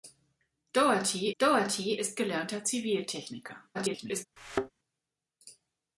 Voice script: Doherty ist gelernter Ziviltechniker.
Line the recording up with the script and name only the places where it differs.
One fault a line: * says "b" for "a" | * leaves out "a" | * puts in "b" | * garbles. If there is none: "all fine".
* puts in "doherty"
* garbles